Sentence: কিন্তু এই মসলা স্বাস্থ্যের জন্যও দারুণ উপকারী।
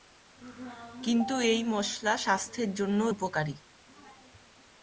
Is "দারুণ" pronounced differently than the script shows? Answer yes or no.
yes